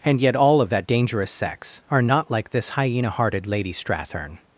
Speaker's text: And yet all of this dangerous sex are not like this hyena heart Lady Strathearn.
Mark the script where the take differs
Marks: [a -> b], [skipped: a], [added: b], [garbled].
And yet all of [this -> that] dangerous sex are not like this hyena [heart -> hearted] Lady Strathearn.